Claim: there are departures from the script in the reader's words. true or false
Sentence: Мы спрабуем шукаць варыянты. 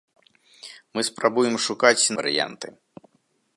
false